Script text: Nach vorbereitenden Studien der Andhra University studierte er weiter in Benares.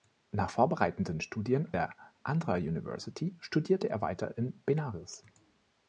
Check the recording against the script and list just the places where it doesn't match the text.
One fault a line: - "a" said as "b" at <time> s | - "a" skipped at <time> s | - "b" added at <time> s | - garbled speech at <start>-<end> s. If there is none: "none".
none